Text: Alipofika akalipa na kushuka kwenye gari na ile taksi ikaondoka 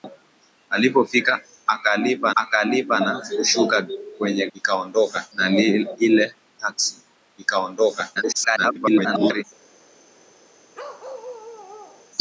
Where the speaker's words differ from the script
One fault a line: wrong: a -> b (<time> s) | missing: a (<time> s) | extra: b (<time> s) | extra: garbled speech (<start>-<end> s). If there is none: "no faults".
extra: akalipa (2.4 s)
wrong: gari -> ikaondoka (4.5 s)
extra: garbled speech (8.2-9.4 s)